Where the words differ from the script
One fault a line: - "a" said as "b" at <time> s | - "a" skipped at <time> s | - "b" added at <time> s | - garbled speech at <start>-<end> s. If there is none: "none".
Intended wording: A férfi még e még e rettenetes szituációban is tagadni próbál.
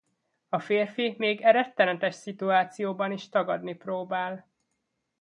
- "még e" skipped at 1.5 s